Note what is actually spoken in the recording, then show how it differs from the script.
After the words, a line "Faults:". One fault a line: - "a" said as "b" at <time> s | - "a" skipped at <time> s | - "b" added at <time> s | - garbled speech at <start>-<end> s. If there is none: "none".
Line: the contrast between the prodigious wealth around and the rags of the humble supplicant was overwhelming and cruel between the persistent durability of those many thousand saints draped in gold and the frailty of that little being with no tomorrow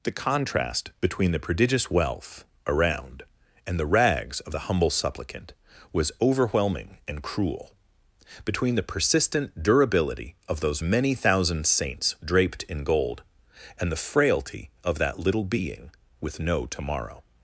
the contrast between the prodigious wealth around and the rags of the humble supplicant was overwhelming and cruel between the persistent durability of those many thousand saints draped in gold and the frailty of that little being with no tomorrow
Faults:
none